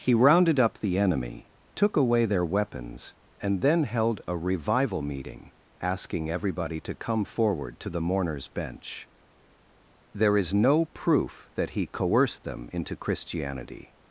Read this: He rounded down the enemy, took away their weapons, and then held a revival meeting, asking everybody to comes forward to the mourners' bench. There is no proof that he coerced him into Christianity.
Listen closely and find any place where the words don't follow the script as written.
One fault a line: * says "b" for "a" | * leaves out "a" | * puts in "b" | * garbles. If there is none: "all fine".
* says "up" for "down"
* says "come" for "comes"
* says "them" for "him"